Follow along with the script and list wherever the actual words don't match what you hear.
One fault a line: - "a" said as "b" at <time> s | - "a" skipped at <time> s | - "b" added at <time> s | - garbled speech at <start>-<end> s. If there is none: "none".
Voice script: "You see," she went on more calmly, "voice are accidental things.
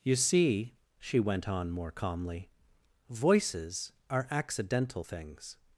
- "voice" said as "voices" at 3.1 s